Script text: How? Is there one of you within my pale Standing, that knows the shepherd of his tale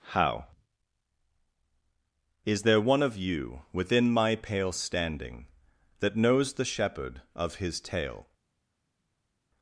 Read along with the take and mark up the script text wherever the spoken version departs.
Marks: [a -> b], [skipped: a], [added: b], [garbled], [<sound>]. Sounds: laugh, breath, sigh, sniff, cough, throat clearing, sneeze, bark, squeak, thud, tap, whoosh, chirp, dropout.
How? Is there one of you within my pale Standing, that knows the shepherd of his tale